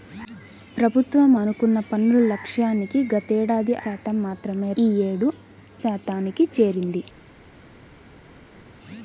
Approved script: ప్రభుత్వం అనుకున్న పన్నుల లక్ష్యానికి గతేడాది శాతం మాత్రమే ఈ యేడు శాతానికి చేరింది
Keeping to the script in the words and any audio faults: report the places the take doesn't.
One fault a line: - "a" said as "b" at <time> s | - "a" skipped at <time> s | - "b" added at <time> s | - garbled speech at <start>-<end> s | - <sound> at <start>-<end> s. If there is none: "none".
none